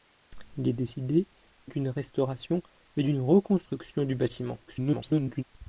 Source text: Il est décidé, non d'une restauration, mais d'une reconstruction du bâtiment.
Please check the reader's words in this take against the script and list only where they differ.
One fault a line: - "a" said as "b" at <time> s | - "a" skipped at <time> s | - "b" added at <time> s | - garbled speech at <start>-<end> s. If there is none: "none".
- "non" skipped at 1.3 s
- garbled speech at 4.7-5.4 s